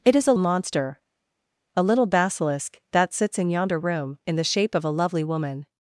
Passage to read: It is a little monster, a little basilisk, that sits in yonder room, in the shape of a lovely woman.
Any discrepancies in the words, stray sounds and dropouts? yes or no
yes